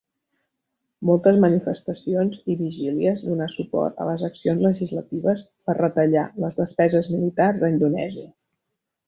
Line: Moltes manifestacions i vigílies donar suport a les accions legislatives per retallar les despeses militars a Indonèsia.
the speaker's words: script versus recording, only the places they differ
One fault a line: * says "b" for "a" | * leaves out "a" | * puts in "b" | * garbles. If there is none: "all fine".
all fine